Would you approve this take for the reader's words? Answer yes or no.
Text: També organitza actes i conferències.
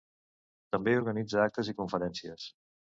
yes